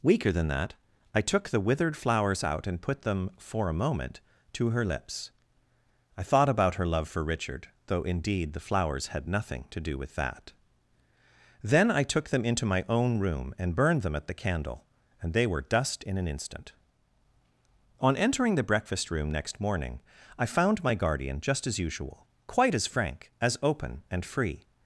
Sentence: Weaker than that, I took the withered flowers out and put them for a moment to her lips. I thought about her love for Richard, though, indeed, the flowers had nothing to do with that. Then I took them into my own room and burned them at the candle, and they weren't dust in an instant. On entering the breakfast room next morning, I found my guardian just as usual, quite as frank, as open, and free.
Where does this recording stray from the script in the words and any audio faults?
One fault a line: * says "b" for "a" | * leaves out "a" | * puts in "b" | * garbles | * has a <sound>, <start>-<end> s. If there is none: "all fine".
* says "were" for "weren't"